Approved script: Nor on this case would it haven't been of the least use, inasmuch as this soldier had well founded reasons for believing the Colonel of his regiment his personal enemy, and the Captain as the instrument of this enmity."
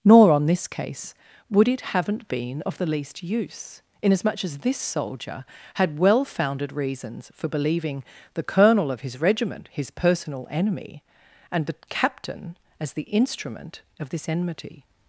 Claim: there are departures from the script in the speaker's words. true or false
false